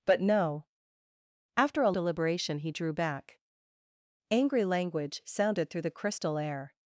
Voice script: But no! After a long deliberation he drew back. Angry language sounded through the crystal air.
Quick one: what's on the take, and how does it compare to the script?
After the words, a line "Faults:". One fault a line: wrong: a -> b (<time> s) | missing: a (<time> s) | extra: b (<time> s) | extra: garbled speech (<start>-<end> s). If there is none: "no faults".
But no! After a deliberation he drew back. Angry language sounded through the crystal air.
Faults:
missing: long (1.9 s)